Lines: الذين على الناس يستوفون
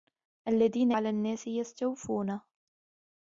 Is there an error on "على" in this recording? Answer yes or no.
no